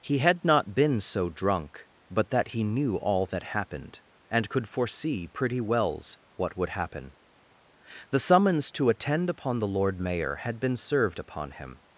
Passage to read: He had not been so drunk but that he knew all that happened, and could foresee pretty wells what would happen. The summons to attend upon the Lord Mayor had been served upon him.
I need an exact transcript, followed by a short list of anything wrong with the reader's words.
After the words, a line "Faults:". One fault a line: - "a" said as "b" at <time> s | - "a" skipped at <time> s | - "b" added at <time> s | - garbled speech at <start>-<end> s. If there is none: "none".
He had not been so drunk but that he knew all that happened, and could foresee pretty wells what would happen. The summons to attend upon the Lord Mayor had been served upon him.
Faults:
none